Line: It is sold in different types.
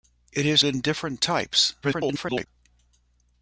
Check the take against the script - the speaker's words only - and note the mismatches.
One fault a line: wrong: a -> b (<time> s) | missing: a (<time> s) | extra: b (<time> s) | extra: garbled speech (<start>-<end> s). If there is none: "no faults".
missing: sold (0.6 s)
extra: garbled speech (1.8-2.5 s)